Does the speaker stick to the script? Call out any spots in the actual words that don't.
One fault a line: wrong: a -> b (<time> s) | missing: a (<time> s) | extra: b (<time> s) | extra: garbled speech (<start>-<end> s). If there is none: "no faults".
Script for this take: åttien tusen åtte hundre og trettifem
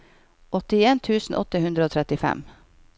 no faults